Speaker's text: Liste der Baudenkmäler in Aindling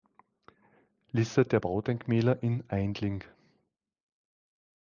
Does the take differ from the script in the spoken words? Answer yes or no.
no